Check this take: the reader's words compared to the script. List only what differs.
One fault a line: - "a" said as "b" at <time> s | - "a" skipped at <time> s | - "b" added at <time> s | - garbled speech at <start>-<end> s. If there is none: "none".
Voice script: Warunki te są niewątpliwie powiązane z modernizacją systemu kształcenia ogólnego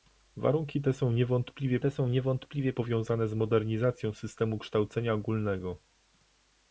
- "te są niewątpliwie" added at 1.8 s